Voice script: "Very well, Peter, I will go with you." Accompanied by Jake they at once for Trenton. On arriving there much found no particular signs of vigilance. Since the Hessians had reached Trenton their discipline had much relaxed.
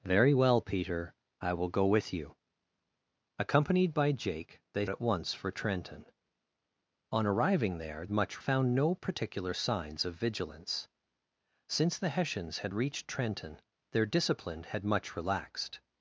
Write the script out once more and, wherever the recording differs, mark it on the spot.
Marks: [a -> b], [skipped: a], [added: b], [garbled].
"Very well, Peter, I will go with you." Accompanied by Jake they at once for Trenton. On arriving there much found no particular signs of vigilance. Since the Hessians had reached Trenton their discipline had much relaxed.